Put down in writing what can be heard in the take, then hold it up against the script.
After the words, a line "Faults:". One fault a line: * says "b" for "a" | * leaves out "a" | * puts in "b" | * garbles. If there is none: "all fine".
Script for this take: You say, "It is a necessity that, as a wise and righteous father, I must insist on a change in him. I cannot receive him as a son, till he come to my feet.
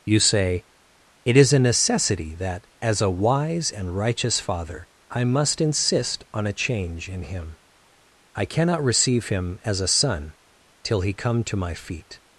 You say, "It is a necessity that, as a wise and righteous father, I must insist on a change in him. I cannot receive him as a son, till he come to my feet.
Faults:
all fine